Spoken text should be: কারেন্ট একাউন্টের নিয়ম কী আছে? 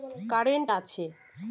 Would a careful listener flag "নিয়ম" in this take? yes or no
yes